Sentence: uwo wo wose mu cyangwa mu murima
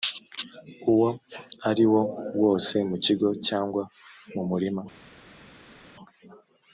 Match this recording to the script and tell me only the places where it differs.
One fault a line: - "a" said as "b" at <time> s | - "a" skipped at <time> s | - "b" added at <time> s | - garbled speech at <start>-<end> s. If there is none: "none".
- "ari" added at 1.7 s
- "kigo" added at 3.0 s